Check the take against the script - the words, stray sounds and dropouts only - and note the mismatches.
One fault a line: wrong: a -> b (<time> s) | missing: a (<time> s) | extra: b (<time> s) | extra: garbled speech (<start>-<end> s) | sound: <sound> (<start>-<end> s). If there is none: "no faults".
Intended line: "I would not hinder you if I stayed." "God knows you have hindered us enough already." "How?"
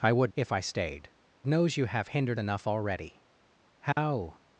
missing: not hinder you (0.3 s)
missing: God (1.1 s)
missing: us (2.4 s)
sound: dropout (3.9-4.0 s)